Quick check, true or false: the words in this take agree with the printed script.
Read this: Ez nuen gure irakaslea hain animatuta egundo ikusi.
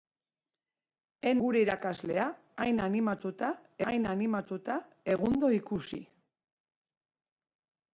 false